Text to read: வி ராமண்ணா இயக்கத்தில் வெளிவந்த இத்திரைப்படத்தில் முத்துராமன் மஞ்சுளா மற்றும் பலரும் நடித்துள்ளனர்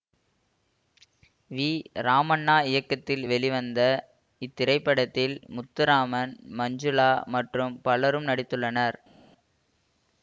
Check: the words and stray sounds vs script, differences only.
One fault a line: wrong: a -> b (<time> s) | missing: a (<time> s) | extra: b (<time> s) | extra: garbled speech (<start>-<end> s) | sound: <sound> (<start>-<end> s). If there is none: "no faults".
no faults